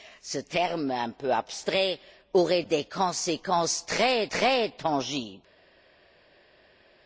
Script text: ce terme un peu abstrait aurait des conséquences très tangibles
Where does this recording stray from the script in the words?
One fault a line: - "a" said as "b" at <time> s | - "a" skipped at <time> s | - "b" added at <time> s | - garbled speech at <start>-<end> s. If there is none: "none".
- "très" added at 4.3 s